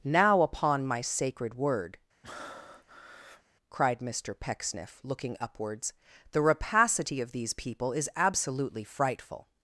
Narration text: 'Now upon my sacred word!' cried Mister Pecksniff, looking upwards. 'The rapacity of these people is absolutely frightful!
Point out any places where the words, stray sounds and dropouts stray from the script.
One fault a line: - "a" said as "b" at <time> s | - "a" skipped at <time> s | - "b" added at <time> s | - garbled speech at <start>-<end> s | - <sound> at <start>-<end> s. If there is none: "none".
- breath at 2.2-3.4 s